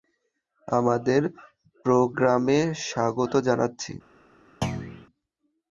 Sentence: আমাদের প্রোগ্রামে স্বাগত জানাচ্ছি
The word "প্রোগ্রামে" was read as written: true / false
true